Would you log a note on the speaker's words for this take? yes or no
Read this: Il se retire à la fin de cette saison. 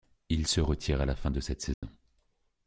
no